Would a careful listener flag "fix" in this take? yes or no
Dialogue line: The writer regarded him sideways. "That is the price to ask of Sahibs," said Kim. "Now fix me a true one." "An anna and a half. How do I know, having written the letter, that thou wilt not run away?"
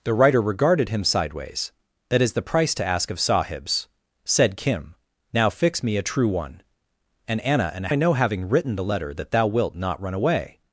no